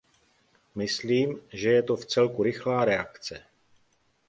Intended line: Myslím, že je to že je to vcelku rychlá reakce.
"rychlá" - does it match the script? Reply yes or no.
yes